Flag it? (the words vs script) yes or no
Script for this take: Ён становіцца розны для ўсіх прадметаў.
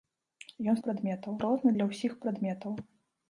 yes